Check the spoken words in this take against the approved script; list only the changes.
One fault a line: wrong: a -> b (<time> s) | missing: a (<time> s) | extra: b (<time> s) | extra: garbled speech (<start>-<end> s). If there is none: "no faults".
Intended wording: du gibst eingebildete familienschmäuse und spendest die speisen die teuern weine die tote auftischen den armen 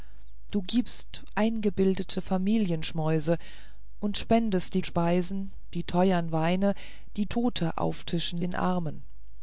no faults